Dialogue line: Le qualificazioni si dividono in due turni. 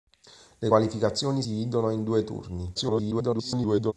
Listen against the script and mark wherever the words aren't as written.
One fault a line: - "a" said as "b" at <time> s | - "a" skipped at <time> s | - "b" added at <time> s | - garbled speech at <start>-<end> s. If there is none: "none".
- "si" skipped at 1.4 s
- garbled speech at 2.7-3.9 s